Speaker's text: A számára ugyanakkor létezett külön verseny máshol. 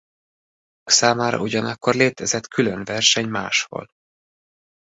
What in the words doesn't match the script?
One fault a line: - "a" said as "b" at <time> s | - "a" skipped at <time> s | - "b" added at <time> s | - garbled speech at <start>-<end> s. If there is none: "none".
none